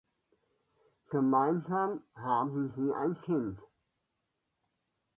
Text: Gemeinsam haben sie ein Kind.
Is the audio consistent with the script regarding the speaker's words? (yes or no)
yes